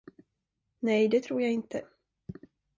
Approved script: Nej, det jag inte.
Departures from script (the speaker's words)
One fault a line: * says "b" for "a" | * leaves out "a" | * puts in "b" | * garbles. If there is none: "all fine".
* puts in "tror"